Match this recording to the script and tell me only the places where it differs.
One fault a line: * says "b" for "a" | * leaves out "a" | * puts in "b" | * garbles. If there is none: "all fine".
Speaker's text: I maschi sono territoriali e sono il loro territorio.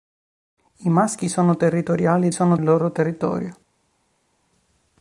all fine